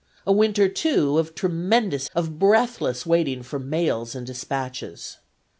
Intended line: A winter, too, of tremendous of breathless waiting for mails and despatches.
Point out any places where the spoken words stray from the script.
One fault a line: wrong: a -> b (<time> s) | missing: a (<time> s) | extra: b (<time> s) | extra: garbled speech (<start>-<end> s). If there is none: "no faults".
no faults